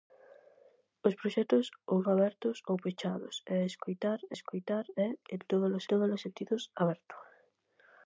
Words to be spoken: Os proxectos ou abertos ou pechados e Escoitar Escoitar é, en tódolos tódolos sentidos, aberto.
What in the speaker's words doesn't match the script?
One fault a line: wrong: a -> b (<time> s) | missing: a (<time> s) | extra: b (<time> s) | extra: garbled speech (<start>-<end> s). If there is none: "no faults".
no faults